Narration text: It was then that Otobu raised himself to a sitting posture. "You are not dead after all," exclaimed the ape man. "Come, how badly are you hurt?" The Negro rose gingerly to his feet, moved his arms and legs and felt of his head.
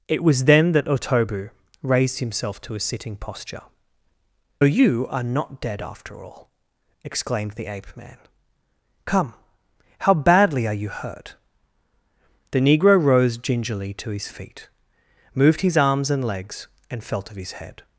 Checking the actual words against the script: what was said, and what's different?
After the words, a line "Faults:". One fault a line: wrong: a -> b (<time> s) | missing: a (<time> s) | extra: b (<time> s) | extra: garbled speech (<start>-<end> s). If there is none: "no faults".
It was then that Otobu raised himself to a sitting posture. "You are not dead after all," exclaimed the ape man. "Come, how badly are you hurt?" The Negro rose gingerly to his feet, moved his arms and legs and felt of his head.
Faults:
no faults